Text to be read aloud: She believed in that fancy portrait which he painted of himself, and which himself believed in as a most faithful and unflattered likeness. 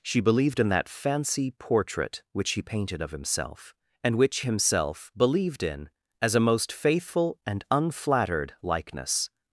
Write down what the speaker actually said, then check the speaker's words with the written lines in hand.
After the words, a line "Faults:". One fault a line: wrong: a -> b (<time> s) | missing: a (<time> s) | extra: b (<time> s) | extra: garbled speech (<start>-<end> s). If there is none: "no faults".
She believed in that fancy portrait which he painted of himself, and which himself believed in as a most faithful and unflattered likeness.
Faults:
no faults